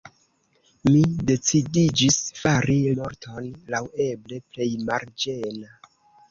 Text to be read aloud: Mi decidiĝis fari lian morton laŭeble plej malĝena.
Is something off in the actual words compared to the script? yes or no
yes